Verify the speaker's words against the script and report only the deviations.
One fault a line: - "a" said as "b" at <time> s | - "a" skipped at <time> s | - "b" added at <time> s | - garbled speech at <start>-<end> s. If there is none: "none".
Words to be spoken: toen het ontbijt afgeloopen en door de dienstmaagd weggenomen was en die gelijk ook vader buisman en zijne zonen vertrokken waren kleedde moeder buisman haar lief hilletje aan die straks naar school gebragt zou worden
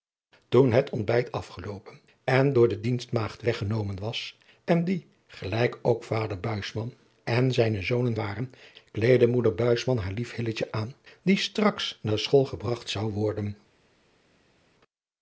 - "vertrokken" skipped at 8.2 s